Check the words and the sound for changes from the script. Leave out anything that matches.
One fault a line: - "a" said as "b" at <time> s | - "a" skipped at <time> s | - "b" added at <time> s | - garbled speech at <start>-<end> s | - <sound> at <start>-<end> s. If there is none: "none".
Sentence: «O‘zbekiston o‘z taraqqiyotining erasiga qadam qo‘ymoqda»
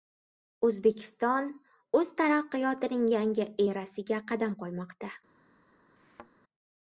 - "yangi" added at 3.2 s
- thud at 6.0-6.3 s